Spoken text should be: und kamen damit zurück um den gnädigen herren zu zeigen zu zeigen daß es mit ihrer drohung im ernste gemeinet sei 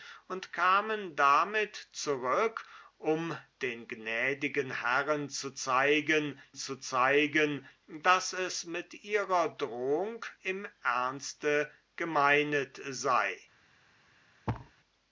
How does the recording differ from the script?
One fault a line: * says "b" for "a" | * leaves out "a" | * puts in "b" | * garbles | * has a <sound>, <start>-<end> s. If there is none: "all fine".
* has a thud, 14.5-14.7 s